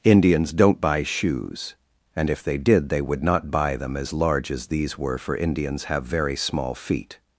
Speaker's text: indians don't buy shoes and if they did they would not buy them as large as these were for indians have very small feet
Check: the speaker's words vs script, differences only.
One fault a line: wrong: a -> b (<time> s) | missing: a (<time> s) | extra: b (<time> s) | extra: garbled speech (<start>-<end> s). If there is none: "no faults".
no faults